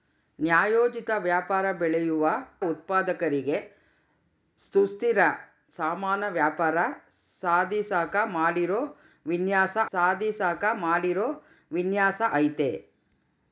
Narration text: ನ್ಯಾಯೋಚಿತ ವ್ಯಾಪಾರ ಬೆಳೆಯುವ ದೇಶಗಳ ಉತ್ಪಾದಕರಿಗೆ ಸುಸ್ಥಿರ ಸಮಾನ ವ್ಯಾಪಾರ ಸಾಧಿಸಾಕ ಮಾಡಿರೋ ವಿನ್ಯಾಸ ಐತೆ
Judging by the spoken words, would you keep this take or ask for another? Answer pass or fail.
fail